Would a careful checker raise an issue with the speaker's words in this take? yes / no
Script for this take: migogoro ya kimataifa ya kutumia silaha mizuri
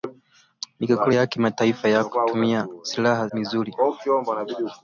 no